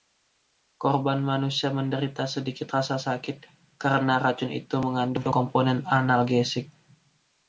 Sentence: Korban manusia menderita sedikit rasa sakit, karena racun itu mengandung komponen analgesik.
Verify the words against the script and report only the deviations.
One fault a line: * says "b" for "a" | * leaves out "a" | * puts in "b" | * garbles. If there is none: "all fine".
all fine